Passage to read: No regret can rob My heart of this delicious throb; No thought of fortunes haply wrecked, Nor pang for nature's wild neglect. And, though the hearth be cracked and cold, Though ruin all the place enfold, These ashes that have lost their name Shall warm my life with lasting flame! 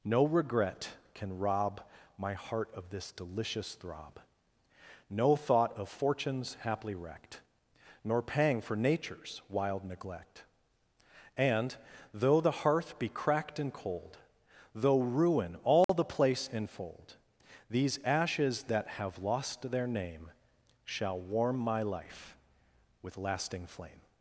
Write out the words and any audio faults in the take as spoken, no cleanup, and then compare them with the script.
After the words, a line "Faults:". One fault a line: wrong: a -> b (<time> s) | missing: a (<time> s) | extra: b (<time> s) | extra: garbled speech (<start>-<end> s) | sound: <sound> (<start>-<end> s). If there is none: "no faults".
No regret can rob My heart of this delicious throb; No thought of fortunes haply wrecked, Nor pang for nature's wild neglect. And, though the hearth be cracked and cold, Though ruin all the place enfold, These ashes that have lost their name Shall warm my life with lasting flame!
Faults:
sound: dropout (15.8-15.9 s)